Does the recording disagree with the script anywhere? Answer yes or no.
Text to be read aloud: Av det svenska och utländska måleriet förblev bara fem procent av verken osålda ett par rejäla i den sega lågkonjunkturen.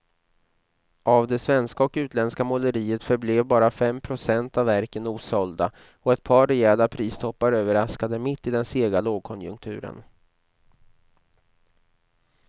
yes